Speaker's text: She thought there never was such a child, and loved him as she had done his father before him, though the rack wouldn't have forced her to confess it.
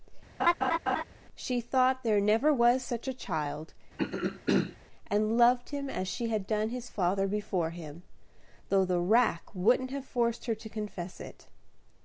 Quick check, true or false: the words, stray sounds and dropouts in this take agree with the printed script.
false